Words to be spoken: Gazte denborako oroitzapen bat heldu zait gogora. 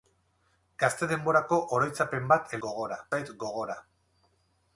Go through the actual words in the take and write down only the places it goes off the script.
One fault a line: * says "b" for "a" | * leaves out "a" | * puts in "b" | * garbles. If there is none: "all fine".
* says "gogora" for "heldu"